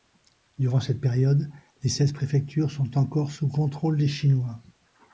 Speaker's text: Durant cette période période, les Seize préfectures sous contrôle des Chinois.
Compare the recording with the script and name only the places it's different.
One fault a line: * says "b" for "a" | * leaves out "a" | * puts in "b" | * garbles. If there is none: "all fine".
* leaves out "période"
* puts in "sont encore"